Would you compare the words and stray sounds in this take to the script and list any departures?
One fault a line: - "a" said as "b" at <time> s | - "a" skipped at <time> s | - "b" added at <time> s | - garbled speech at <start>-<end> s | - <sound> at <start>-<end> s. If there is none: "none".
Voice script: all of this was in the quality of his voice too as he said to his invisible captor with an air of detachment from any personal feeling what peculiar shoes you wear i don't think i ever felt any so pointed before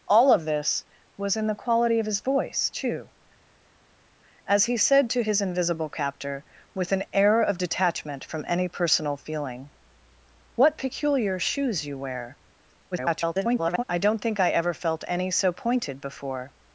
- garbled speech at 12.9-13.8 s